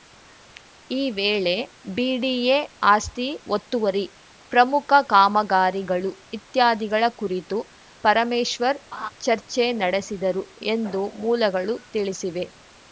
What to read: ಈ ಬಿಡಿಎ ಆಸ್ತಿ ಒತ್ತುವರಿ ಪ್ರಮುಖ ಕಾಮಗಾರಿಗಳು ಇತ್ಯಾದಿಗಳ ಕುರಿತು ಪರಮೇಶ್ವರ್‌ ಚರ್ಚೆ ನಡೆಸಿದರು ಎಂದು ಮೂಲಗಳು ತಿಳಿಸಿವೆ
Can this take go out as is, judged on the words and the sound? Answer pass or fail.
fail